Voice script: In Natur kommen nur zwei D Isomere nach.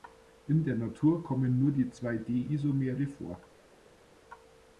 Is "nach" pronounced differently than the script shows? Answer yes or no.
yes